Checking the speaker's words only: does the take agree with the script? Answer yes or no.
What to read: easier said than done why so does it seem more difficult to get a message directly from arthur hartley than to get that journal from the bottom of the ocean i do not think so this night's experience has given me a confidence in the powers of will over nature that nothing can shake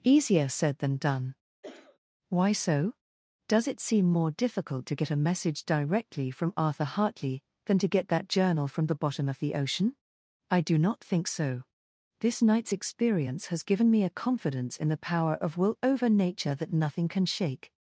no